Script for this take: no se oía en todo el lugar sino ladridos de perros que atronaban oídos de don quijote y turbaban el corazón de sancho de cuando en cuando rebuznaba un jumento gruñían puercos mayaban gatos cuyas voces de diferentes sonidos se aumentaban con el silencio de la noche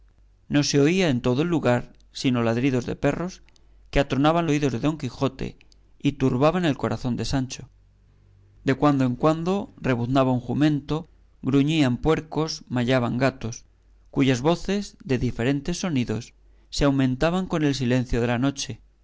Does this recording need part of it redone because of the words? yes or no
no